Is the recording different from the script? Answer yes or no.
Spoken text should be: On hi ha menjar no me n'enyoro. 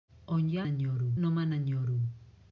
yes